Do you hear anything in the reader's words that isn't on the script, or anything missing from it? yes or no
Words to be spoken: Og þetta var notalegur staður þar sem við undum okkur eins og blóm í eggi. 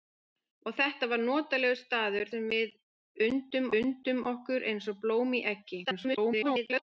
yes